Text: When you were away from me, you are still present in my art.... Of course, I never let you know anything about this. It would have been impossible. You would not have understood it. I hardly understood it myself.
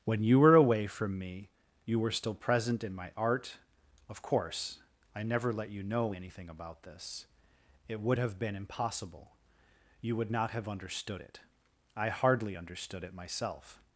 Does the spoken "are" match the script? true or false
false